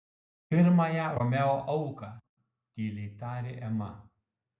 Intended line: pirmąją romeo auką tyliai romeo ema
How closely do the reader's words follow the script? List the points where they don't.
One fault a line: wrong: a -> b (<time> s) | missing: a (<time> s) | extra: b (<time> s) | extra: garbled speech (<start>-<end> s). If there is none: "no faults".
wrong: romeo -> tarė (3.2 s)